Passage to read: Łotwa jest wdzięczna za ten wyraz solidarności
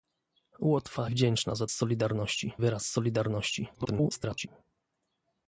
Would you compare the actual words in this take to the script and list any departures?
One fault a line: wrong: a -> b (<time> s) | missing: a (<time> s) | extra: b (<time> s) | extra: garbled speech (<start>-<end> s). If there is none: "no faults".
missing: jest (1.1 s)
wrong: ten -> solidarności (1.7 s)
extra: garbled speech (3.7-4.5 s)